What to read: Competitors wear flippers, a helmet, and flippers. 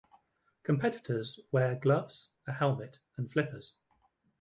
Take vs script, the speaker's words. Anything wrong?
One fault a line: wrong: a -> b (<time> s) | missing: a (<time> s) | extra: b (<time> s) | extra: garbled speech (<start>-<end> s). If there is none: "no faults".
wrong: flippers -> gloves (1.8 s)